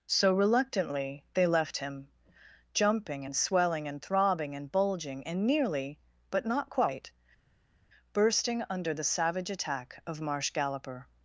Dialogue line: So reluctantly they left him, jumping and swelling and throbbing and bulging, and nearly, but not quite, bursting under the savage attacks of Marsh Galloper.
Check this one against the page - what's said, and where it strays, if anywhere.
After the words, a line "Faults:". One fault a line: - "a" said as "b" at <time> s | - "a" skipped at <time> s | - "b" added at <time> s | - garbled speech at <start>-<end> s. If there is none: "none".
So reluctantly they left him, jumping and swelling and throbbing and bulging, and nearly, but not quite, bursting under the savage attack of Marsh Galloper.
Faults:
- "attacks" said as "attack" at 9.5 s